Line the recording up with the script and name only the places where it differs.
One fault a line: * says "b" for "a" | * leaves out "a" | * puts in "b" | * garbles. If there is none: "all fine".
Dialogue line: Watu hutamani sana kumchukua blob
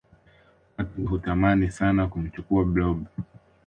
all fine